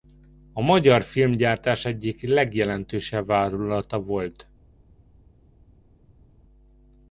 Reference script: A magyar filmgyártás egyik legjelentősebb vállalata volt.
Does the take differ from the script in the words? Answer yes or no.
no